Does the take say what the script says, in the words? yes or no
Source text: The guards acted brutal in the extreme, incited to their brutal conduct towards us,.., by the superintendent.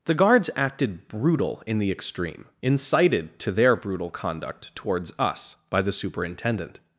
yes